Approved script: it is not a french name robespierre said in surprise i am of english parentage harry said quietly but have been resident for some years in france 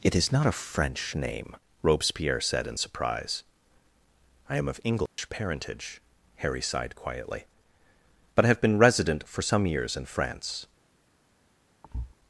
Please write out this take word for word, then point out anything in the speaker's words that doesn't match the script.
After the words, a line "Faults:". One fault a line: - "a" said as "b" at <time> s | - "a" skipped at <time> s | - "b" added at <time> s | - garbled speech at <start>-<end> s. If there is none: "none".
it is not a french name robespierre said in surprise i am of english parentage harry sighed quietly but have been resident for some years in france
Faults:
- "said" said as "sighed" at 6.6 s